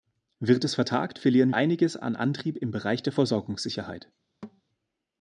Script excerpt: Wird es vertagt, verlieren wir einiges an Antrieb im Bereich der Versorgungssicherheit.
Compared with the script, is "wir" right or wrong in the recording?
wrong